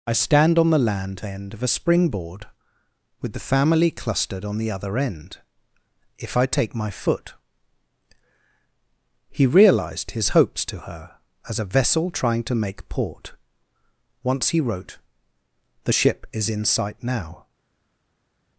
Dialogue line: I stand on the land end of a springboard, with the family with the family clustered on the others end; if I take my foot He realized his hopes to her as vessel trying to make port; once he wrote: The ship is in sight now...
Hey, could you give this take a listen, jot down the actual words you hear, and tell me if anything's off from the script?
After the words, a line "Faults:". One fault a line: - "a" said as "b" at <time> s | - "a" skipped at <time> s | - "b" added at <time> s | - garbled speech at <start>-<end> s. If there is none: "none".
I stand on the land end of a springboard, with the family clustered on the other end; if I take my foot He realized his hopes to her as a vessel trying to make port; once he wrote: The ship is in sight now...
Faults:
- "with the family" skipped at 3.9 s
- "others" said as "other" at 4.7 s
- "a" added at 11.6 s